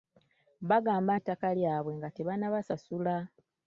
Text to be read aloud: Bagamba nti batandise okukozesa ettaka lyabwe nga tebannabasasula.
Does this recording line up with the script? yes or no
no